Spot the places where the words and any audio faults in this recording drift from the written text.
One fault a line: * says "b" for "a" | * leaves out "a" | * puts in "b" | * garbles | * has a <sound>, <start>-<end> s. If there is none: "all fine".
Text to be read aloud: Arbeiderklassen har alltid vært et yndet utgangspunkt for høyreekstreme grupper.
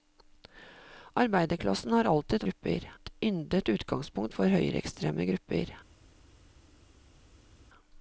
* says "grupper" for "vært"